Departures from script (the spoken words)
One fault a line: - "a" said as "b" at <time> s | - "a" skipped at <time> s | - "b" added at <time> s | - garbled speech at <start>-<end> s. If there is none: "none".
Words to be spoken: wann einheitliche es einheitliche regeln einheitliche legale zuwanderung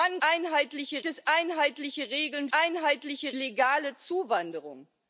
none